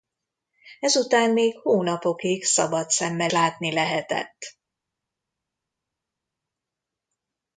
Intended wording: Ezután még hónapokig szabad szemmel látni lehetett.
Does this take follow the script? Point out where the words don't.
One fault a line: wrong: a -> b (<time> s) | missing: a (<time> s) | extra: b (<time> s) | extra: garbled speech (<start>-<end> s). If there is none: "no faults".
no faults